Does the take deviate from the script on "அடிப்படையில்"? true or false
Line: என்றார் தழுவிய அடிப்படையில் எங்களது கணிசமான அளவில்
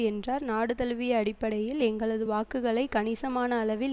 false